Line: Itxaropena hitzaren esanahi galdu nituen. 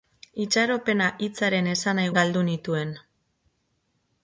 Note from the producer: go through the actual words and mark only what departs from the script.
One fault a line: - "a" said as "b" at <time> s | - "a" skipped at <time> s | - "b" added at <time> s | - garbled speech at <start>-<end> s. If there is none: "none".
none